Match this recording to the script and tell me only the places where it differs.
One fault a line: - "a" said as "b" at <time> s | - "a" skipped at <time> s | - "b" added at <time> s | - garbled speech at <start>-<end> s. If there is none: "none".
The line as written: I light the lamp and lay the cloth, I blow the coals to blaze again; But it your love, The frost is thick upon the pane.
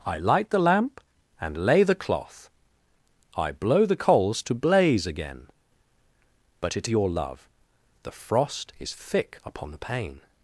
none